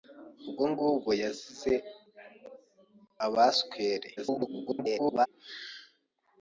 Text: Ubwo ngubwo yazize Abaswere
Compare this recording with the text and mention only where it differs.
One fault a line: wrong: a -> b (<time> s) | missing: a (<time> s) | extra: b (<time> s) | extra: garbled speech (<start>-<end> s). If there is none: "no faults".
extra: garbled speech (4.2-5.3 s)